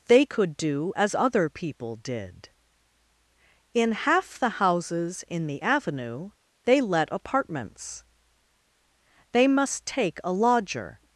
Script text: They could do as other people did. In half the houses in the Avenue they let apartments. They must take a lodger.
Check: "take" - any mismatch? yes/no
no